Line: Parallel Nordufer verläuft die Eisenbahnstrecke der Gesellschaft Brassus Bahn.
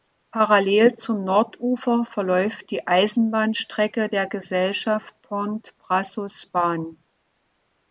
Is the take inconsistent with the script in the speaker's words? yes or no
yes